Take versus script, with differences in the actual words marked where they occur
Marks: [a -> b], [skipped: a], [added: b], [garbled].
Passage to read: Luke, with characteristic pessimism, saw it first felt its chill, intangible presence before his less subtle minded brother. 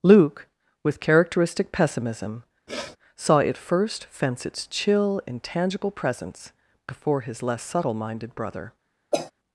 Luke, with characteristic pessimism, saw it first [felt -> fence] its chill, intangible presence before his less subtle minded brother.